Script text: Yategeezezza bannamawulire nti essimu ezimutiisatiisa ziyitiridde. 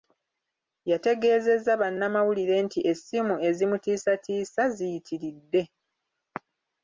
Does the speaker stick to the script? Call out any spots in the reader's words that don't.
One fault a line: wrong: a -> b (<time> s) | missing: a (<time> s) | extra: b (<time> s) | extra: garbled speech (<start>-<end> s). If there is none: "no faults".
no faults